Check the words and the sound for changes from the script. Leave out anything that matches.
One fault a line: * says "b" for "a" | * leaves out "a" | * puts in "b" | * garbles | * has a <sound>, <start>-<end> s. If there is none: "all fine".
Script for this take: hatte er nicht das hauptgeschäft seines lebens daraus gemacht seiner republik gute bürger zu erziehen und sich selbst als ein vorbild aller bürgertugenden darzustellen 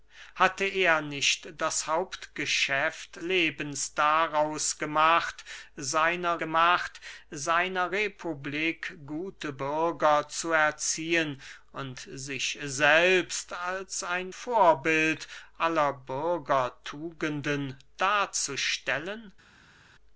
* leaves out "seines"
* puts in "gemacht seiner"